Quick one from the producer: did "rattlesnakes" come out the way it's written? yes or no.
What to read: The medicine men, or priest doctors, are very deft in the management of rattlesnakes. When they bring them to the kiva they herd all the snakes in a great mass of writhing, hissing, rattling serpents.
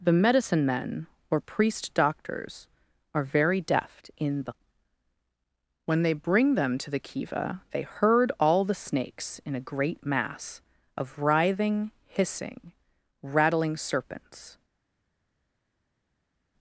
no